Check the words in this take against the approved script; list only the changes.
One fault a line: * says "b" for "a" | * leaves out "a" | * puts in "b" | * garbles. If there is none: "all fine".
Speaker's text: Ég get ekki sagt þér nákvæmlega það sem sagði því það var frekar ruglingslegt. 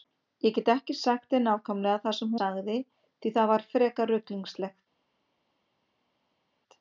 all fine